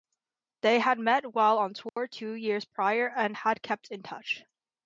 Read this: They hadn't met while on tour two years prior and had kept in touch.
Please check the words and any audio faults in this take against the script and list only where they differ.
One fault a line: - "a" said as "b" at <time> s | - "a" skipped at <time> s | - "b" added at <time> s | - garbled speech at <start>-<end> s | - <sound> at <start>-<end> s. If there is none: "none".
- "hadn't" said as "had" at 0.8 s
- dropout at 1.9-2.0 s